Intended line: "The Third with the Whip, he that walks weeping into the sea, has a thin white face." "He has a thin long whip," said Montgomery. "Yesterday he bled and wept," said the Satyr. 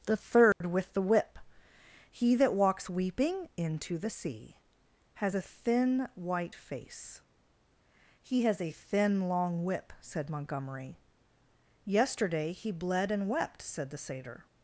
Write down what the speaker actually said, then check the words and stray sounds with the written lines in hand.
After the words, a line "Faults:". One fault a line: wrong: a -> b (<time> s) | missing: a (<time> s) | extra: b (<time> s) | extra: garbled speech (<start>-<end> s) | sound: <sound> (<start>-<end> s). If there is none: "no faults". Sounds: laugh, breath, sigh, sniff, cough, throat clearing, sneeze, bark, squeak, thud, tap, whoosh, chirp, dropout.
"The Third with the Whip, he that walks weeping into the sea, has a thin white face." "He has a thin long whip," said Montgomery. "Yesterday he bled and wept," said the Satyr.
Faults:
sound: dropout (0.5-0.6 s)